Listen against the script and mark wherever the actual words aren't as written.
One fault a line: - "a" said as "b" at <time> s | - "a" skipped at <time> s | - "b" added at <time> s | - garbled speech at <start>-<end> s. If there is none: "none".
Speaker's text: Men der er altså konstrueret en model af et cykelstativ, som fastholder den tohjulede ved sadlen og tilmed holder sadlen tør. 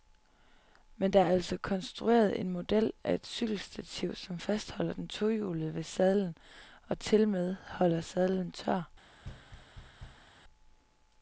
none